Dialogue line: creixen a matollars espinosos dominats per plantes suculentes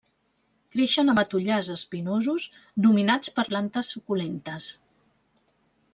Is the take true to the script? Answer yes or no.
yes